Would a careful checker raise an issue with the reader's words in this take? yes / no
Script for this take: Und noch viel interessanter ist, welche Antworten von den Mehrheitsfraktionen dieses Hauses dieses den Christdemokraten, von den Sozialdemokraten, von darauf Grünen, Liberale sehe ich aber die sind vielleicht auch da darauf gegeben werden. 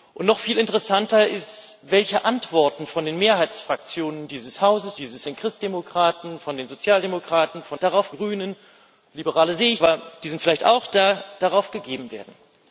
no